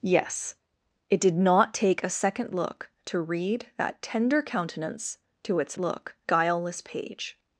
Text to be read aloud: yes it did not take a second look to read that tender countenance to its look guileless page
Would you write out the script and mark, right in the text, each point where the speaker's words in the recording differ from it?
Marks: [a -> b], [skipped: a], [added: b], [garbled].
yes it did not take a second look to read that tender countenance to its look guileless page